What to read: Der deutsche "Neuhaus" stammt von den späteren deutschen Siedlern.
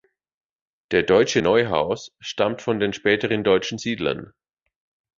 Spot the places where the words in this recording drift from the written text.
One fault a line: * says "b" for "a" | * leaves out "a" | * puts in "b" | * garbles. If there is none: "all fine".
all fine